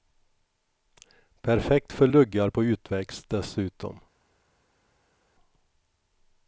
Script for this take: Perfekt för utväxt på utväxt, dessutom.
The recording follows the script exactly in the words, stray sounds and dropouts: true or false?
false